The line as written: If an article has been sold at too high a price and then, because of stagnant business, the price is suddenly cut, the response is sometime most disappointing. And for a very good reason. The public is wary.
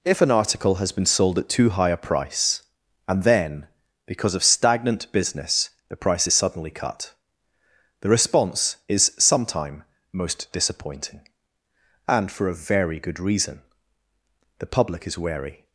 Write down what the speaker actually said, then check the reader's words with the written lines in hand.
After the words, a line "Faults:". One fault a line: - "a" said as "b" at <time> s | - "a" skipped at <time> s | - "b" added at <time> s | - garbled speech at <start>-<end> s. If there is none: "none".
If an article has been sold at too high a price and then, because of stagnant business, the price is suddenly cut, the response is sometime most disappointing. And for a very good reason. The public is wary.
Faults:
none